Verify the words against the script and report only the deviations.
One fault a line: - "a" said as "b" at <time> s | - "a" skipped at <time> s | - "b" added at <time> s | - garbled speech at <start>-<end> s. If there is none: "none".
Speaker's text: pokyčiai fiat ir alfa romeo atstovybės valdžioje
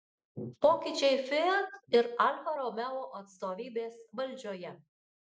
none